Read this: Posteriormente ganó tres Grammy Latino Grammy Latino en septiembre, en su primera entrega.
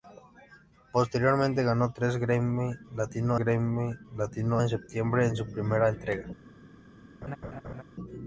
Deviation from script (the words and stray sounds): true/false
true